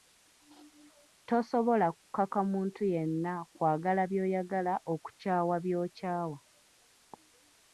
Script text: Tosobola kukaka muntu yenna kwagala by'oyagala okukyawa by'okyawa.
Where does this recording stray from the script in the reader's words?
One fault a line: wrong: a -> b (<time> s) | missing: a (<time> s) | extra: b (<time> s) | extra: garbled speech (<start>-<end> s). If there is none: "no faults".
no faults